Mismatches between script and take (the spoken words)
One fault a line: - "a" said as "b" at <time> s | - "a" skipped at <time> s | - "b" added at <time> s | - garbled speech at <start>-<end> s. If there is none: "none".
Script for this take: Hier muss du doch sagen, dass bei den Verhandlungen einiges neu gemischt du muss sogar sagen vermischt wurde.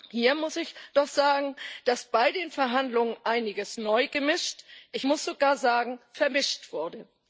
- "du" said as "ich" at 0.6 s
- "du" said as "ich" at 4.9 s